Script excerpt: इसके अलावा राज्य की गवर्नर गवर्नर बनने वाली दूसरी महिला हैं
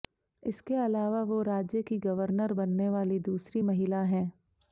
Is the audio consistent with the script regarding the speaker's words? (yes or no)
no